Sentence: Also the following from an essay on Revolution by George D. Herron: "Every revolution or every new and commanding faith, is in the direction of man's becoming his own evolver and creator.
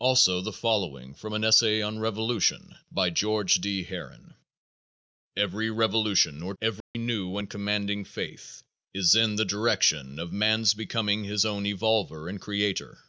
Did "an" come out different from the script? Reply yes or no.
no